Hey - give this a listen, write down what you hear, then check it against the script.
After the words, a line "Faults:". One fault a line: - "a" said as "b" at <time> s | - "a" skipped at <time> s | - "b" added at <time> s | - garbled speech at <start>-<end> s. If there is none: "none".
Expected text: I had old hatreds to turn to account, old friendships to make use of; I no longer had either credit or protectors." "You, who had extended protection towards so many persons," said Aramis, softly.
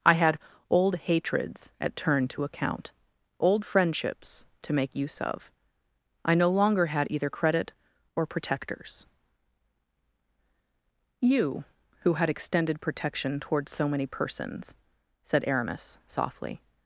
I had old hatreds at turn to account, old friendships to make use of; I no longer had either credit or protectors." "You, who had extended protection towards so many persons," said Aramis, softly.
Faults:
- "to" said as "at" at 1.8 s